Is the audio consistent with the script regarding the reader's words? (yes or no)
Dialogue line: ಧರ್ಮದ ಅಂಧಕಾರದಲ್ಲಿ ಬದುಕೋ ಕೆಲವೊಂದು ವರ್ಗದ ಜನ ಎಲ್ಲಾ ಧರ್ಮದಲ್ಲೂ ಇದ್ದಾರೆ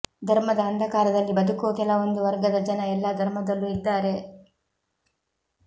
yes